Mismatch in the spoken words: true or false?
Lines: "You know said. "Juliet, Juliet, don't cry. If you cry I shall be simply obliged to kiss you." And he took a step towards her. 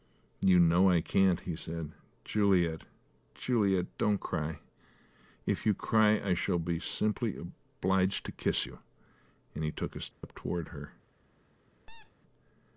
true